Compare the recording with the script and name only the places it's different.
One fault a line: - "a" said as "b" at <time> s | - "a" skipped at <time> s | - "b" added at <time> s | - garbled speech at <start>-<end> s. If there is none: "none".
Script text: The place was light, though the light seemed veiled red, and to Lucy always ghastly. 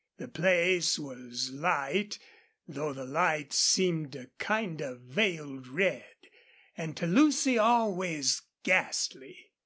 - "a kind of" added at 4.1 s